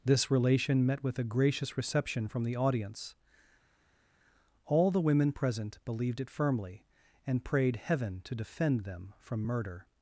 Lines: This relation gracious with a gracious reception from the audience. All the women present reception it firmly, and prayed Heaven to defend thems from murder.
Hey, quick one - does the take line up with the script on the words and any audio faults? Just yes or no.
no